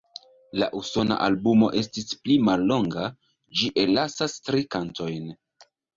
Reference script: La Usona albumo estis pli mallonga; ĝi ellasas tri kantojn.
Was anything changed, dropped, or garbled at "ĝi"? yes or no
no